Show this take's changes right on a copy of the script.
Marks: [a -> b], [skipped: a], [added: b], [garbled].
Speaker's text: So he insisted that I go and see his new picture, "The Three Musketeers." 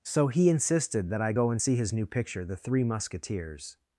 So he insisted that I go and see his new picture, "The Three Musketeers."